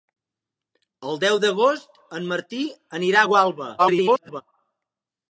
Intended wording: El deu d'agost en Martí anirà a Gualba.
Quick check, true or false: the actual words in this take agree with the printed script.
false